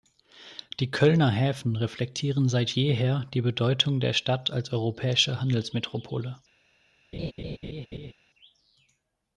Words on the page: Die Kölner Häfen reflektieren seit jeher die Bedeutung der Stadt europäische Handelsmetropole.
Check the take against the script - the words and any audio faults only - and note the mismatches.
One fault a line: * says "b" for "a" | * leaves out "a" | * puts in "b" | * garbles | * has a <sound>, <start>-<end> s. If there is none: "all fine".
* puts in "als"
* has a laugh, 7.1-8.1 s